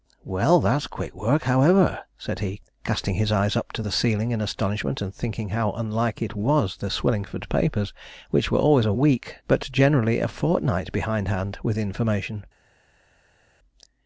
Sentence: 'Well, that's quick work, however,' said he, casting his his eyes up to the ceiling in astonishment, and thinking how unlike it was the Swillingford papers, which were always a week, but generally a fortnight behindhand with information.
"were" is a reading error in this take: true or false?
false